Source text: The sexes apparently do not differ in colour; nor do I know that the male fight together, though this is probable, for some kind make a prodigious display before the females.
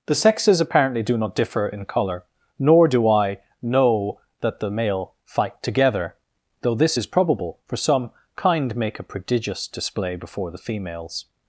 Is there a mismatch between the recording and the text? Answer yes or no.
no